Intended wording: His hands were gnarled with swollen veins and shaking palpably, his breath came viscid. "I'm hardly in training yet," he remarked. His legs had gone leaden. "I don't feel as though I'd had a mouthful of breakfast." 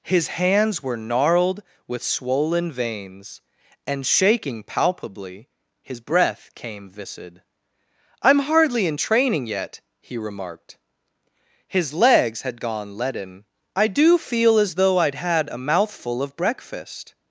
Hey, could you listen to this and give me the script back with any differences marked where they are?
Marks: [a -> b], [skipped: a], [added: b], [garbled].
His hands were gnarled with swollen veins and shaking palpably, his breath came viscid. "I'm hardly in training yet," he remarked. His legs had gone leaden. "I [don't -> do] feel as though I'd had a mouthful of breakfast."